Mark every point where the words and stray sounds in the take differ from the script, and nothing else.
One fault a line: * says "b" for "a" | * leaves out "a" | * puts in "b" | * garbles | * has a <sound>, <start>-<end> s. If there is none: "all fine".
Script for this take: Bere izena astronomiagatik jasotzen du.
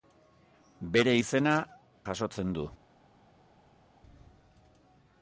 * leaves out "astronomiagatik"